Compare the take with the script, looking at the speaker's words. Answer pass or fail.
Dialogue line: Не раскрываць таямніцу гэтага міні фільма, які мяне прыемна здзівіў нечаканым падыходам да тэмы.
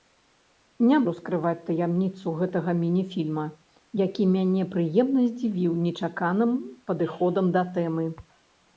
pass